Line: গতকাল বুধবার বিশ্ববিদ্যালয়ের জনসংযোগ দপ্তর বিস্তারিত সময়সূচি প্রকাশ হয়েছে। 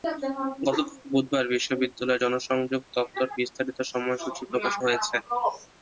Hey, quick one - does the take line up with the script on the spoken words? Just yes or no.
yes